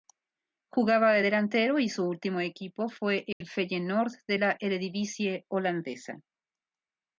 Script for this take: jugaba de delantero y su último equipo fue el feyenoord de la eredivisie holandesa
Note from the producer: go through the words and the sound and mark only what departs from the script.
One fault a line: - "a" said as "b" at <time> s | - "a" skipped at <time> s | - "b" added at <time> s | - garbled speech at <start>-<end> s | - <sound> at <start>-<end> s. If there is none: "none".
- dropout at 3.3-3.4 s